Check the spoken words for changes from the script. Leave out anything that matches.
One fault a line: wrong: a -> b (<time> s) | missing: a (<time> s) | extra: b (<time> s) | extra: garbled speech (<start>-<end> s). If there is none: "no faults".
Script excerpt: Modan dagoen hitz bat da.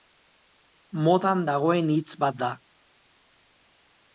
no faults